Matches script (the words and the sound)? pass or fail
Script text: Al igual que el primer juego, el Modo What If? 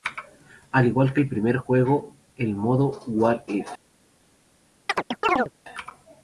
fail